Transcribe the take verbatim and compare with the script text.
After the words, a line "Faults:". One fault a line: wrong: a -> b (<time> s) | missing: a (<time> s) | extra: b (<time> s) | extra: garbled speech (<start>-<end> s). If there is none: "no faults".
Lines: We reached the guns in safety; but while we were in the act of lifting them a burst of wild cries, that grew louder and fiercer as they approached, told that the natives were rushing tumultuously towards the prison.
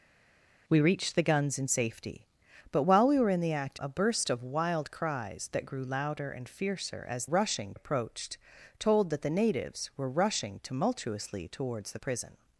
We reached the guns in safety; but while we were in the act a burst of wild cries, that grew louder and fiercer as rushing approached, told that the natives were rushing tumultuously towards the prison.
Faults:
missing: of lifting them (3.8 s)
wrong: they -> rushing (7.2 s)